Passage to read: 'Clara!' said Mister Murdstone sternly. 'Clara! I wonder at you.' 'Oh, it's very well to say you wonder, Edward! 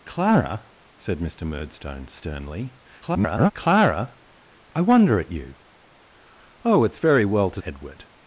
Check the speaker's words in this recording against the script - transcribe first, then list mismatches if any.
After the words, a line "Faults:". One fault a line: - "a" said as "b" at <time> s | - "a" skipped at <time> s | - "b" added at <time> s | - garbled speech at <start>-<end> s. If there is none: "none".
'Clara!' said Mister Murdstone sternly. [garbled] 'Clara! I wonder at you.' 'Oh, it's very well to Edward!
Faults:
- garbled speech at 3.0-3.5 s
- "say you wonder" skipped at 7.6 s